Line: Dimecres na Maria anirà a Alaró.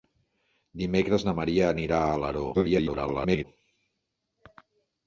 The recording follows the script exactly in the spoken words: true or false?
false